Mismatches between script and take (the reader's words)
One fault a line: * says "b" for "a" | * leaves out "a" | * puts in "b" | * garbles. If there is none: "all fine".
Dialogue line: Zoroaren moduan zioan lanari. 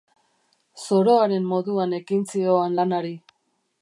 * puts in "ekin"